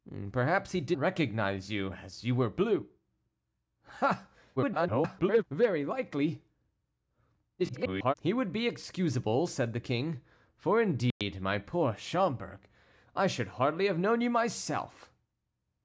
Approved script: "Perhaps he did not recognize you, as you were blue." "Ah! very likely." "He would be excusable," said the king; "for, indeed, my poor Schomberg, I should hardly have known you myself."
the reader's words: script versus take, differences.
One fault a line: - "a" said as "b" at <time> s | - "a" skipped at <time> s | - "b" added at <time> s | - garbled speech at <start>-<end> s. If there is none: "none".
- "not" skipped at 1.0 s
- garbled speech at 4.6-5.4 s
- garbled speech at 7.6-8.1 s